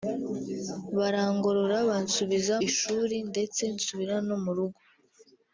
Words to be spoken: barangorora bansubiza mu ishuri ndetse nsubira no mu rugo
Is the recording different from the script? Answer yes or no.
yes